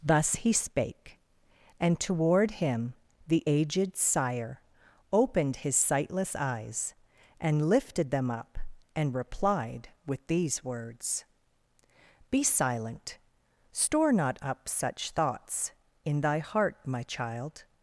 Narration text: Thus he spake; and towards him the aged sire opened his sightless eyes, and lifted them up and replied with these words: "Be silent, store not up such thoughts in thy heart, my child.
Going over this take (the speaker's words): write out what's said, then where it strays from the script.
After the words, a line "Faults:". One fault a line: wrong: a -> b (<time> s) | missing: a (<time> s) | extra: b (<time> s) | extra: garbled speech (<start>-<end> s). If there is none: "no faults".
Thus he spake; and toward him the aged sire opened his sightless eyes, and lifted them up and replied with these words: "Be silent, store not up such thoughts in thy heart, my child.
Faults:
wrong: towards -> toward (2.0 s)